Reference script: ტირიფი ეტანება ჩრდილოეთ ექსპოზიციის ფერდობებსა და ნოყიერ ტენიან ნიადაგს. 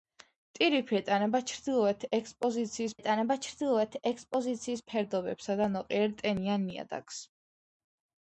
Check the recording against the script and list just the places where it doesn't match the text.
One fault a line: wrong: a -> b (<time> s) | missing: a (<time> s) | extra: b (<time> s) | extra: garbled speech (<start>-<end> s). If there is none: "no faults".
extra: ეტანება ჩრდილოეთ ექსპოზიციის (3.0 s)